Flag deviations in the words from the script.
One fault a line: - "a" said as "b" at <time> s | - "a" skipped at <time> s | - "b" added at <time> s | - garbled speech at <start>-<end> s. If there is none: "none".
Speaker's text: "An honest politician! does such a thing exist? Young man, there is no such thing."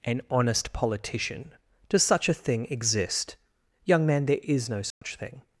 none